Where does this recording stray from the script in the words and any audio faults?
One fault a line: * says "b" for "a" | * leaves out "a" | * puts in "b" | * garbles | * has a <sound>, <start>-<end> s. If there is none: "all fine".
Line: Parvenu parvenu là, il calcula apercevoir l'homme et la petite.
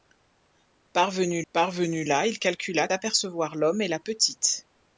all fine